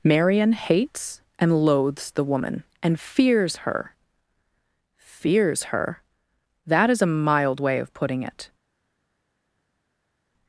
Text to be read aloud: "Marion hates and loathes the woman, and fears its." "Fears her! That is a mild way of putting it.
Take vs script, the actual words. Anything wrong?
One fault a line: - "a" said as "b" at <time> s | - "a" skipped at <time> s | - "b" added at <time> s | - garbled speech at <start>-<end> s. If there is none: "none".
- "its" said as "her" at 3.6 s